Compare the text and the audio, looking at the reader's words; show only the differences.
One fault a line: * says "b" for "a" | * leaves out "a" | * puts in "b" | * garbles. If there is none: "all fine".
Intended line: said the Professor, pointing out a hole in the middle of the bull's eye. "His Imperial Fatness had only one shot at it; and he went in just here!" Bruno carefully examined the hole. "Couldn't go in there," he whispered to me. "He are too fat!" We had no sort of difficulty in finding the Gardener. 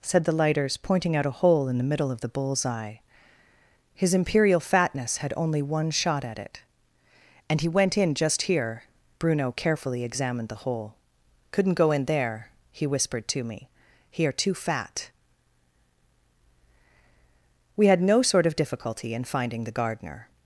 * says "Lighters" for "Professor"